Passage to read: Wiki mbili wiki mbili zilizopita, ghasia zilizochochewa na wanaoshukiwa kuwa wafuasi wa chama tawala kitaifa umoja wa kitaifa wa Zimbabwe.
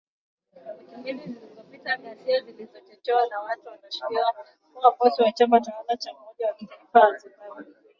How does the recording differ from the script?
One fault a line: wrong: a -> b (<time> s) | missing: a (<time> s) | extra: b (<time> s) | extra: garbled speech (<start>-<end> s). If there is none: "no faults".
missing: wiki mbili (1.2 s)
extra: watu (3.4 s)
wrong: kitaifa -> cha (6.0 s)